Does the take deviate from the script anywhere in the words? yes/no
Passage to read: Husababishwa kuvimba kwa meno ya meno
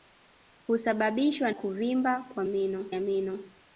no